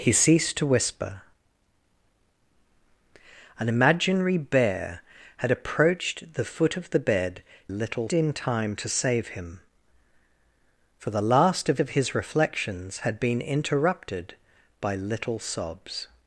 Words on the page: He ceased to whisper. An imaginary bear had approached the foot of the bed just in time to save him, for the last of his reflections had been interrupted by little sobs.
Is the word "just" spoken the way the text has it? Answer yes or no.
no